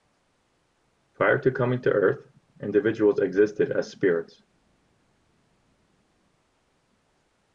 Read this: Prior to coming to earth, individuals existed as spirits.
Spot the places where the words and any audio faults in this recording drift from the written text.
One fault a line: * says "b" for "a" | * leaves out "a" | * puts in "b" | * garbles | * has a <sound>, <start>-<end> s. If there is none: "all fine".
all fine